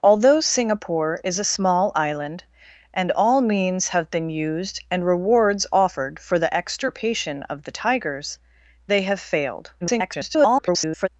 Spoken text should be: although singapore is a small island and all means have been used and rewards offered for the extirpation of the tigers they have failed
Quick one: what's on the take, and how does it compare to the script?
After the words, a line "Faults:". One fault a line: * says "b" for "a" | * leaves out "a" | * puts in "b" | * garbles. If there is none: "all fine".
although singapore is a small island and all means have been used and rewards offered for the extirpation of the tigers they have failed [garbled]
Faults:
* garbles